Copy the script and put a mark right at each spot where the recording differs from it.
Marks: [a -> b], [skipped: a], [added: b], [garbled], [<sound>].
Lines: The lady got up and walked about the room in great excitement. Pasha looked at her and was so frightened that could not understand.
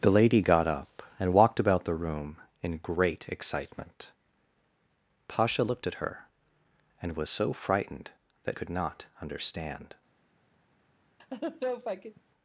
The lady got up and walked about the room in great excitement. Pasha looked at her and was so frightened that could not understand. [laugh]